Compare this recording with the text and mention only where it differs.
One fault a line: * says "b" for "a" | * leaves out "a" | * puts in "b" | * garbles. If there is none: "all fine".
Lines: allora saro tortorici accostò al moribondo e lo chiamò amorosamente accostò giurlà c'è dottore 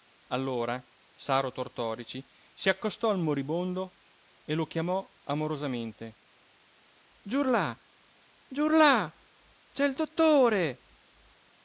* puts in "si"
* says "giurlà" for "accostò"
* puts in "il"